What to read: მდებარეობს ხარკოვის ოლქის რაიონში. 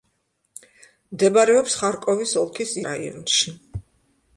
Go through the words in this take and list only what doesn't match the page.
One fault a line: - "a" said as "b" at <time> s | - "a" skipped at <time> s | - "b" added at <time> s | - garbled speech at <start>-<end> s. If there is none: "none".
none